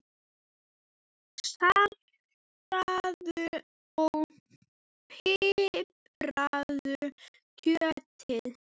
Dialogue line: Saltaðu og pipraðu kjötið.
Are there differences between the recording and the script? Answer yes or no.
no